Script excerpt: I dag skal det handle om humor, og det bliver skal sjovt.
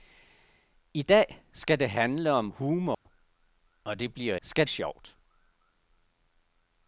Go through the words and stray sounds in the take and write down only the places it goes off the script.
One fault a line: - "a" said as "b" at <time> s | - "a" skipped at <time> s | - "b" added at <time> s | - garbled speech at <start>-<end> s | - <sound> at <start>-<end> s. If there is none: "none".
- dropout at 2.9-3.1 s